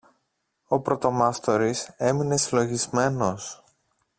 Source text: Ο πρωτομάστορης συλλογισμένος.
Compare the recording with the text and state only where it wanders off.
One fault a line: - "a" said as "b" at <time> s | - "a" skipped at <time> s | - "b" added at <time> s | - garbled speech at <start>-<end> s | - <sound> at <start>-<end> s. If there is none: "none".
- "έμεινε" added at 2.0 s